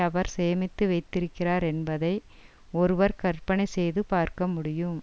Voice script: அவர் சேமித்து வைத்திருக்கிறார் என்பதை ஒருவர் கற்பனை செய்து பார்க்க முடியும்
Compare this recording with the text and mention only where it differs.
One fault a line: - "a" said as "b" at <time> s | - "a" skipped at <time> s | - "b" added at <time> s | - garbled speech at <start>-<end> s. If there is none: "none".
none